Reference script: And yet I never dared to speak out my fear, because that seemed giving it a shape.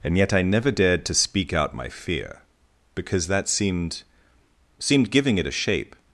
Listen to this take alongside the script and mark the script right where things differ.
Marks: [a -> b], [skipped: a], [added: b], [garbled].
And yet I never dared to speak out my fear, because that seemed [added: seemed] giving it a shape.